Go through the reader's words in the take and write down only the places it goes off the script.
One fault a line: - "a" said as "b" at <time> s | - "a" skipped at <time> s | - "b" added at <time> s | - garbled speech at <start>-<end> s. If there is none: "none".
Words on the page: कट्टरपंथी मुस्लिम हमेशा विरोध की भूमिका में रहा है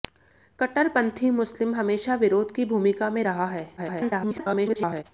- garbled speech at 3.8-5.0 s